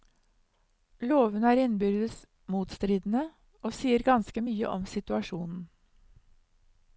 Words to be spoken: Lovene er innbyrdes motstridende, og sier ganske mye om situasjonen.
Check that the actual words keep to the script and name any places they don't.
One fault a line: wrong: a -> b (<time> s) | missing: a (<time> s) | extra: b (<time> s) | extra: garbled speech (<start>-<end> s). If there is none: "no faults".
no faults